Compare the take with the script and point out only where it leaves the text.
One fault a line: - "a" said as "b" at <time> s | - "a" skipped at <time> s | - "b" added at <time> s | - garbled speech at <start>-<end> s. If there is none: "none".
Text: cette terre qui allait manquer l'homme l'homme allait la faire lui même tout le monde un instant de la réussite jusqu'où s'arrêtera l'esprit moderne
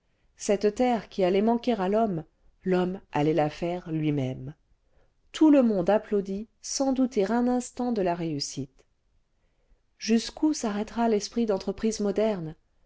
- "à" added at 1.7 s
- "applaudit sans douter" added at 5.9 s
- "d'entreprise" added at 11.4 s